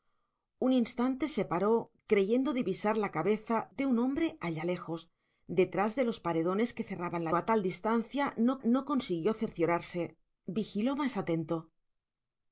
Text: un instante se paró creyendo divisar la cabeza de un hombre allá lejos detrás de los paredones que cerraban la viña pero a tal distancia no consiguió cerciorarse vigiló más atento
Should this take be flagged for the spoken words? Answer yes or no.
yes